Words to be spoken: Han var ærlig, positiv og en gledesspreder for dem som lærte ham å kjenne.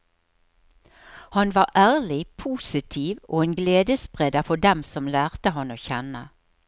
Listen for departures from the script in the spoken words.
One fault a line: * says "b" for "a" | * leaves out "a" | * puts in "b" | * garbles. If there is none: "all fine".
all fine